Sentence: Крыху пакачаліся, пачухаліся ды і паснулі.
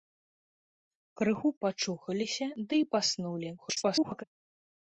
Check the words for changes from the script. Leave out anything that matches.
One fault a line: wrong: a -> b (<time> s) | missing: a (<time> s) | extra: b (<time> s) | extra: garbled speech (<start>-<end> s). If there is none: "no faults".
missing: пакачаліся (1.5 s)
extra: garbled speech (3.6-4.2 s)